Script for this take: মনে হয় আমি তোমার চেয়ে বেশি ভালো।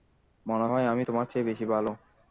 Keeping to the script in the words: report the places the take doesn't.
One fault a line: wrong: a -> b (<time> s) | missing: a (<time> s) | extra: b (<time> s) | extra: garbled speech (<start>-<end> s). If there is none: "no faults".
no faults